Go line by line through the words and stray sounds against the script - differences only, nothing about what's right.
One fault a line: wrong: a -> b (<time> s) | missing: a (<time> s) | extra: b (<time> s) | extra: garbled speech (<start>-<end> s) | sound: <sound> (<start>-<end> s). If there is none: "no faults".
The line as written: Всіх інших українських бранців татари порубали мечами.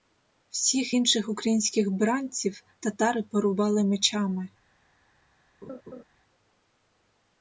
sound: laugh (5.6-6.0 s)